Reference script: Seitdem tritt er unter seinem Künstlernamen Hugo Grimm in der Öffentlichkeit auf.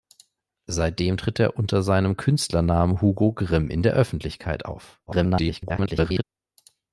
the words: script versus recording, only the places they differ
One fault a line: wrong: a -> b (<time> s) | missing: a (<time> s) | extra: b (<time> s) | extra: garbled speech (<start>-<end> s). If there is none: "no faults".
extra: garbled speech (5.1-6.2 s)